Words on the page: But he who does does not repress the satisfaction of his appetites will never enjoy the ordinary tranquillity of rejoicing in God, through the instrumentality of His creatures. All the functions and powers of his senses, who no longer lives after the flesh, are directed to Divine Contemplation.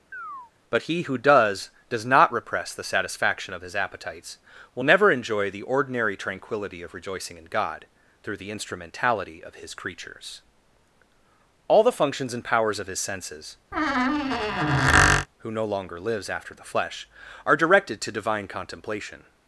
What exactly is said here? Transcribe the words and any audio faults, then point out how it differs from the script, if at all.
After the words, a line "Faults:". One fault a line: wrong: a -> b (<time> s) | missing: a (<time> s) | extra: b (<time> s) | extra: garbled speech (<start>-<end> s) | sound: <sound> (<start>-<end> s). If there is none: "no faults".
But he who does does not repress the satisfaction of his appetites will never enjoy the ordinary tranquillity of rejoicing in God, through the instrumentality of His creatures. All the functions and powers of his senses, who no longer lives after the flesh, are directed to Divine Contemplation.
Faults:
sound: chirp (0.1-0.5 s)
sound: squeak (13.7-15.3 s)